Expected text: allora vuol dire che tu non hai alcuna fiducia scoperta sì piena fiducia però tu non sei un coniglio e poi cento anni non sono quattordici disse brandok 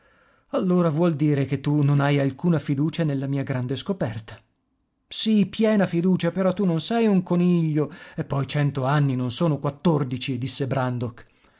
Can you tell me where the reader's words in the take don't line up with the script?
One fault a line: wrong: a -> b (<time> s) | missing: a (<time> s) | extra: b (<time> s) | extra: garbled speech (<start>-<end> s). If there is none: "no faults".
extra: nella mia grande (3.0 s)